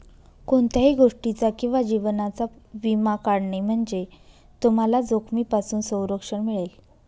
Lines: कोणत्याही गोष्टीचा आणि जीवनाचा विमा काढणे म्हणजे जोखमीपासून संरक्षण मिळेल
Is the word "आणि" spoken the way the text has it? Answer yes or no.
no